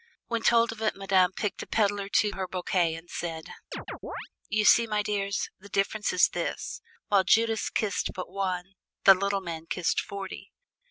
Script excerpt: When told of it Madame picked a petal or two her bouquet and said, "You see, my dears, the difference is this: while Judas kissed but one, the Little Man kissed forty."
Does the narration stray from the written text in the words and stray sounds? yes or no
yes